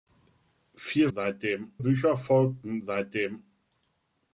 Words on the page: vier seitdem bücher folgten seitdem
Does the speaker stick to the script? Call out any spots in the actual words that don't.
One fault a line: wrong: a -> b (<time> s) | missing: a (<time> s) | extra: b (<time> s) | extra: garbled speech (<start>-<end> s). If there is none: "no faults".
no faults